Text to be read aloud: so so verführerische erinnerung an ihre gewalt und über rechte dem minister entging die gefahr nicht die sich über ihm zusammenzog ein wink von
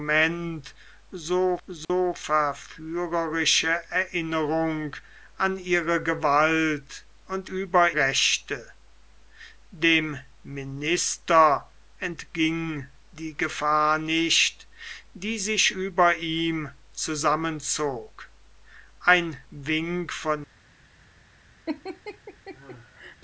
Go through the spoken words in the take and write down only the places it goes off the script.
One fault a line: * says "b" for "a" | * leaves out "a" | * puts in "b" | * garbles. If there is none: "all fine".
all fine